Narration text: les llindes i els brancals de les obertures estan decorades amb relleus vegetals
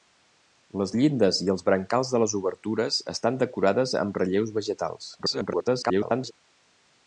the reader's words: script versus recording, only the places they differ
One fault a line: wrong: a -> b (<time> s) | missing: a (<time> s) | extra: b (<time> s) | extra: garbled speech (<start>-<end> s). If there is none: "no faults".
extra: garbled speech (5.2-6.3 s)